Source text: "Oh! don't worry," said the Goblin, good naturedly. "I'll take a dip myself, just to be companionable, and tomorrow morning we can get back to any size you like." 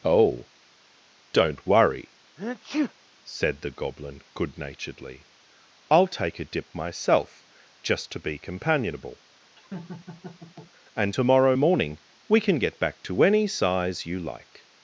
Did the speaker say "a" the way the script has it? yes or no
yes